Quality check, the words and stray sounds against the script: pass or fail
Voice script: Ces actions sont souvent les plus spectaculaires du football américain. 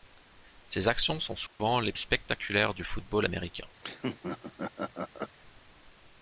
fail